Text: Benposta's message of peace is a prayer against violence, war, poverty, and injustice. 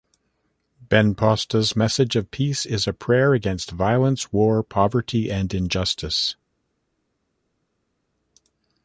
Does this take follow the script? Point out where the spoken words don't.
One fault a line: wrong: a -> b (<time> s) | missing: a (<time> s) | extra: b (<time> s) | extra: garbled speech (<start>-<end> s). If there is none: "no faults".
no faults